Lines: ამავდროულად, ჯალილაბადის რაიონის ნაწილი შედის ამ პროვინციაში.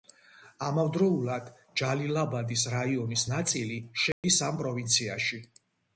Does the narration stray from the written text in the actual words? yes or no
no